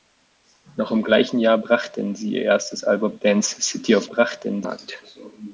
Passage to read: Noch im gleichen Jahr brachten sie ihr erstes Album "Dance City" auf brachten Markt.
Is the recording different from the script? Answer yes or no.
no